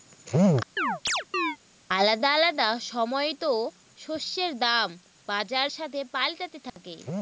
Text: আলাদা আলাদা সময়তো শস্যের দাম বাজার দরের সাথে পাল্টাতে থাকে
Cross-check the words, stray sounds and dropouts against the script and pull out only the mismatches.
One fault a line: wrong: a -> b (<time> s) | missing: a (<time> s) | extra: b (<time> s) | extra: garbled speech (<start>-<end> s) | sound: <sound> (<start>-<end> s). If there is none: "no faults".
sound: chirp (0.8-1.6 s)
missing: দরের (5.7 s)
sound: dropout (6.7-6.8 s)